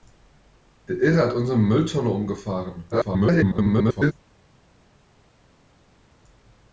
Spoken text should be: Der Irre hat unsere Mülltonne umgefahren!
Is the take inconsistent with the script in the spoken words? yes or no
yes